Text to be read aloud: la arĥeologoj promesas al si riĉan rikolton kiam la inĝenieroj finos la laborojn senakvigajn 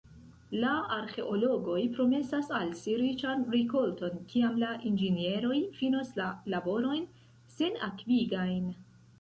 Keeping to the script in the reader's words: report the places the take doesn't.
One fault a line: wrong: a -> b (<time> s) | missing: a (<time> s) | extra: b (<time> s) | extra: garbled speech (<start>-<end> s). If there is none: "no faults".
no faults